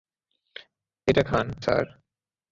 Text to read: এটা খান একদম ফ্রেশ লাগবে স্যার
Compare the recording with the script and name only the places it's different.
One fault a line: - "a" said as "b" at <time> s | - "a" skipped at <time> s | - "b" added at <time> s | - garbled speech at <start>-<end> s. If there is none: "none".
- "একদম ফ্রেশ লাগবে" skipped at 1.5 s